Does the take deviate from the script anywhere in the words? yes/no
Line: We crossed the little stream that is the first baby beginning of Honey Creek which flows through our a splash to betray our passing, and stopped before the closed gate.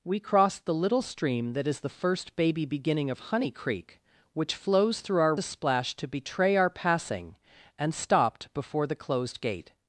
no